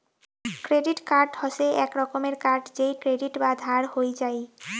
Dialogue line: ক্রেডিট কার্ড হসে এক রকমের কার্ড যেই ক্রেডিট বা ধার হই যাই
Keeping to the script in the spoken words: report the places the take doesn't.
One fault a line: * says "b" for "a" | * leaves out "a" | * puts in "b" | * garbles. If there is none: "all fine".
all fine